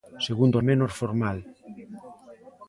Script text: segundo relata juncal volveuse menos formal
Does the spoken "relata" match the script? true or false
false